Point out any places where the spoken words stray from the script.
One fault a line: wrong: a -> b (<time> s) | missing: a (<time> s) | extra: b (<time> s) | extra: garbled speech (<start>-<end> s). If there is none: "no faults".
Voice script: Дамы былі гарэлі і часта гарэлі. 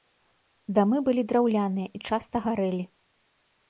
wrong: гарэлі -> драўляныя (1.3 s)